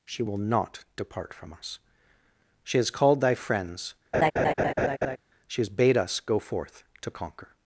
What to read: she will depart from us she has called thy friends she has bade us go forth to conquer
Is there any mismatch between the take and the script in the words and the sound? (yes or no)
yes